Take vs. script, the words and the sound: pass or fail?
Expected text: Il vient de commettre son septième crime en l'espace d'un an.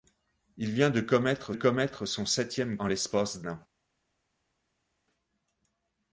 fail